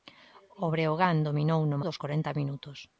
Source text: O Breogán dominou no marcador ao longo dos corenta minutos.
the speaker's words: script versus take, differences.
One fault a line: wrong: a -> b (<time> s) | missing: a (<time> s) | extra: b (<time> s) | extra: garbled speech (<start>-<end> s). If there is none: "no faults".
missing: marcador ao longo (1.8 s)